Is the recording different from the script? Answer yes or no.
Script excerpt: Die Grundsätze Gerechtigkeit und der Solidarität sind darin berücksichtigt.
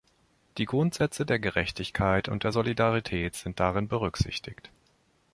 yes